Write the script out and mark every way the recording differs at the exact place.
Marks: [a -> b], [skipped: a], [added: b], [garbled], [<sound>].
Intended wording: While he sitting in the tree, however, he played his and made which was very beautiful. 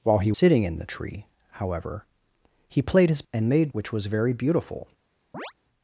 While he sitting in the tree, however, he played his and made which was very beautiful. [chirp]